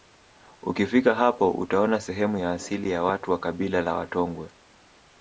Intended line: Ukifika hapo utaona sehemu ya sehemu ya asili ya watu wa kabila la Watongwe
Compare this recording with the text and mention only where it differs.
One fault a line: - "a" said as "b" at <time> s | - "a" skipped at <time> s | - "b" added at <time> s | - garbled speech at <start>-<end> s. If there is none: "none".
- "sehemu ya" skipped at 2.5 s